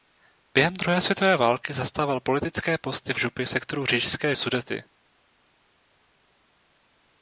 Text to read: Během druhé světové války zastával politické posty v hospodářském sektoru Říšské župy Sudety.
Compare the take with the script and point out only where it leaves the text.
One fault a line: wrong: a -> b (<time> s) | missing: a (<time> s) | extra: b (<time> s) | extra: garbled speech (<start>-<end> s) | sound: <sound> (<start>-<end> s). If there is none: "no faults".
wrong: hospodářském -> župy (3.2 s)
missing: župy (4.4 s)